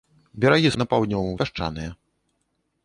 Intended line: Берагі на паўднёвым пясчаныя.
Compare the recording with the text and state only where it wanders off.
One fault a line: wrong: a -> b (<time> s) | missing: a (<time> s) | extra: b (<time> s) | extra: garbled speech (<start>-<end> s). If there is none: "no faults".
no faults